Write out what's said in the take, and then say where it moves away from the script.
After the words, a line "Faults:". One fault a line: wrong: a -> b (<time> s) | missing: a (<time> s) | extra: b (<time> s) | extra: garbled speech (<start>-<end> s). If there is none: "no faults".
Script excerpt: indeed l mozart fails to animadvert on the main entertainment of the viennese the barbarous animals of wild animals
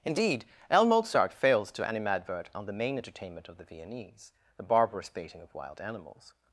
indeed l mozart fails to animadvert on the main entertainment of the viennese the barbarous baiting of wild animals
Faults:
wrong: animals -> baiting (5.1 s)